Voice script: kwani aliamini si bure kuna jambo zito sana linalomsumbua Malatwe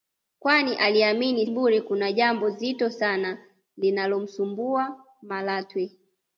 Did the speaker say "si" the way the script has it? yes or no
no